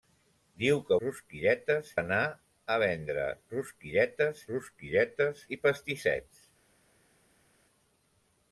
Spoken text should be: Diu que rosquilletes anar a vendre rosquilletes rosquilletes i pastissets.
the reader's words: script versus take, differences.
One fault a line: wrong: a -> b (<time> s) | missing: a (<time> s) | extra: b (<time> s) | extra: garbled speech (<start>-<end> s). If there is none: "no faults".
no faults